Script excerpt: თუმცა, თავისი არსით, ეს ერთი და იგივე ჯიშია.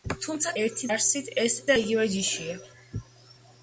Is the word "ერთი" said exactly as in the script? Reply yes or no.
no